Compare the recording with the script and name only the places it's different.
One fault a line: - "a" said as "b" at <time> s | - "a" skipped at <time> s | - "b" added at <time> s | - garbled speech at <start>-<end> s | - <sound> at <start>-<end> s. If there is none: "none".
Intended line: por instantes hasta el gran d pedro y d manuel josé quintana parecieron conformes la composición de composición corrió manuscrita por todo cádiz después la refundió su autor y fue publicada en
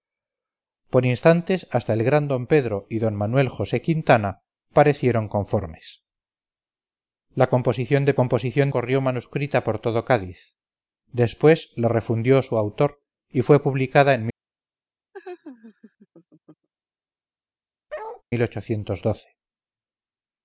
- laugh at 15.1-16.7 s
- bark at 17.9-18.2 s